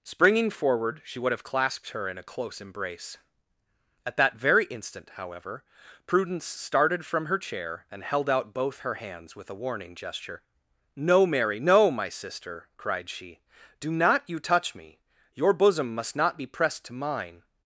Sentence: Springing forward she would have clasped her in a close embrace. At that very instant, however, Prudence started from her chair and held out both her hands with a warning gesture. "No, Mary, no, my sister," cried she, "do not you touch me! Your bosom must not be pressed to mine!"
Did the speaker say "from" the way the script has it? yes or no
yes